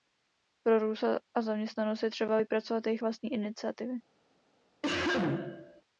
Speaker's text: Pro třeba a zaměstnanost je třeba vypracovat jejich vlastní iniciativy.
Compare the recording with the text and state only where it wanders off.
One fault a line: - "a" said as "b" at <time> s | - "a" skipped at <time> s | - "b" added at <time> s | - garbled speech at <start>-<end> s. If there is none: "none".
- "třeba" said as "růst" at 0.8 s